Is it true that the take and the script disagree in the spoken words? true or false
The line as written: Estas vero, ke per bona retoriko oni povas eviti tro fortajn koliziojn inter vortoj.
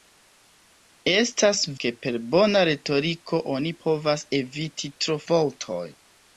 true